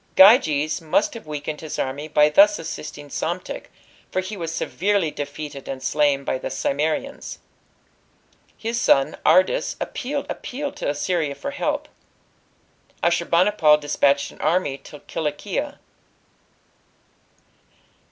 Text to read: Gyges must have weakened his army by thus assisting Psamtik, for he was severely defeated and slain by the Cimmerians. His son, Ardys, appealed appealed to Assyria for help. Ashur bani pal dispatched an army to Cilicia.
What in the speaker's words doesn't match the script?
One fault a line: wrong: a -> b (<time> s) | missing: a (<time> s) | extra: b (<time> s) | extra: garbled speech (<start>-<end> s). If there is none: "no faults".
no faults